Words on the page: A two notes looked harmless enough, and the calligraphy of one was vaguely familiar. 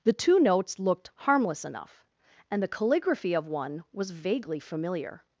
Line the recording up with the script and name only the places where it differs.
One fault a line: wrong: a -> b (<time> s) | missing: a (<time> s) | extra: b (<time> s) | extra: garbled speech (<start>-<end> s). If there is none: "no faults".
wrong: A -> The (0.0 s)